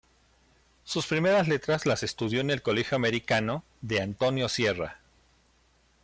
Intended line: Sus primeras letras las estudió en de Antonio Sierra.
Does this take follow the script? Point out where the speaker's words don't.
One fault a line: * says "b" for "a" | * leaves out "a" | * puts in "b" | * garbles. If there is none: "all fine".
* puts in "el colegio Americano"